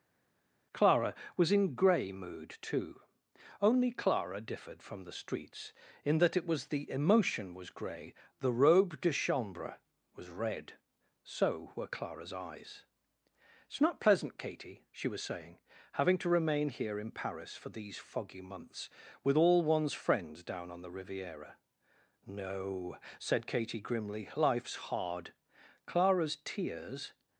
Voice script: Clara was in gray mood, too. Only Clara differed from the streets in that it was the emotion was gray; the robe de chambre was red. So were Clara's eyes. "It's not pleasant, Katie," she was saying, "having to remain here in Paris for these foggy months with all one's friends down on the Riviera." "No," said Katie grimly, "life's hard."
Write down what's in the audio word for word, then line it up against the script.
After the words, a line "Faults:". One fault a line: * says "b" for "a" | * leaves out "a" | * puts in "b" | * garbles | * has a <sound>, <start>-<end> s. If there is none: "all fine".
Clara was in gray mood, too. Only Clara differed from the streets in that it was the emotion was gray; the robe de chambre was red. So were Clara's eyes. "It's not pleasant, Katie," she was saying, "having to remain here in Paris for these foggy months with all one's friends down on the Riviera." "No," said Katie grimly, "life's hard." Clara's tears
Faults:
* puts in "Clara's tears"